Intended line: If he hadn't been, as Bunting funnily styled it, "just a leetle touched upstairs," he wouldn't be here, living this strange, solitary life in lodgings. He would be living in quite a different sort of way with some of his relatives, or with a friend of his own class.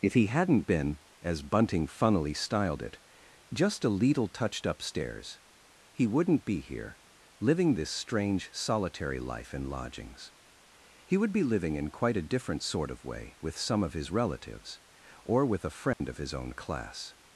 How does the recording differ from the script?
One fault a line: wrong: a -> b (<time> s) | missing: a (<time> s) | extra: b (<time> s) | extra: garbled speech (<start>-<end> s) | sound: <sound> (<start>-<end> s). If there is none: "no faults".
sound: dropout (15.9-16.0 s)